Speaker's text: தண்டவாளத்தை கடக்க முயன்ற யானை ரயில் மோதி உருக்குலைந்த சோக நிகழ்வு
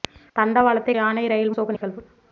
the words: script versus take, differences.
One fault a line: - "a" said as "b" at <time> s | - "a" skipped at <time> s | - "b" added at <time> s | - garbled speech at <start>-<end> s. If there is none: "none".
- "கடக்க முயன்ற" skipped at 0.9 s
- "மோதி உருக்குலைந்த" skipped at 1.6 s